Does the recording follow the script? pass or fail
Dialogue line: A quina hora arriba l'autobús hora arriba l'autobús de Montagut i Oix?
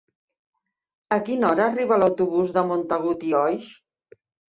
fail